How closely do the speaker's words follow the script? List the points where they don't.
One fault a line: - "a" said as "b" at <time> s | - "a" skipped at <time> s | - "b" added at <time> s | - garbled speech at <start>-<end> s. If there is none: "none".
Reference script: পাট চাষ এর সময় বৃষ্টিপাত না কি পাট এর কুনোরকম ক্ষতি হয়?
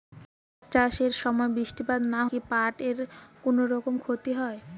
none